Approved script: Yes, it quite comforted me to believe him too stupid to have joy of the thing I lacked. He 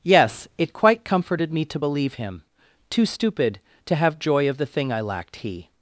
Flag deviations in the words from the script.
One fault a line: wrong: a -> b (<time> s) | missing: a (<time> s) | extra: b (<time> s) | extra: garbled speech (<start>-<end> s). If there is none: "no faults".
no faults